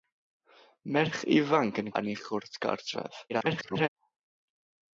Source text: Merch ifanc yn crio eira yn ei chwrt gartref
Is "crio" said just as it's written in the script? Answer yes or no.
no